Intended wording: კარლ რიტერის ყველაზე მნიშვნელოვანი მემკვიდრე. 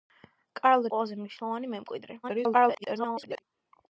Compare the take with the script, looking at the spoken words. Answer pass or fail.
fail